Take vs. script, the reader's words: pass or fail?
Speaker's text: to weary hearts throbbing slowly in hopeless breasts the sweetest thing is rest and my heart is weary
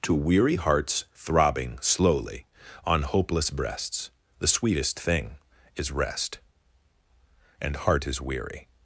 fail